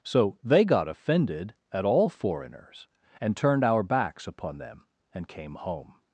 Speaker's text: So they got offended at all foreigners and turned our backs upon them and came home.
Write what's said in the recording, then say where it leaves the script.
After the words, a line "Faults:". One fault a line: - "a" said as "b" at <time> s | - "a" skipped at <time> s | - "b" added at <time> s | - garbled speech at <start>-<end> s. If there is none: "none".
So they got offended at all foreigners and turned our backs upon them and came home.
Faults:
none